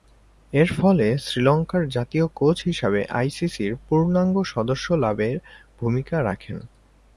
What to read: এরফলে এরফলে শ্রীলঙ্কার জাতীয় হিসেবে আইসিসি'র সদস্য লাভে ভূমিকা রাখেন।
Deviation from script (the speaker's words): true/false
true